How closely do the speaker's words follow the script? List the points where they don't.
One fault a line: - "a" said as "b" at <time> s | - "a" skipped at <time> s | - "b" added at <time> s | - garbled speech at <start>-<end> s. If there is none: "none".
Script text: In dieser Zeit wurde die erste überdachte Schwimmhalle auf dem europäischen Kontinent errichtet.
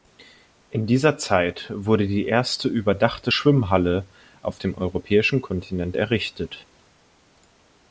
none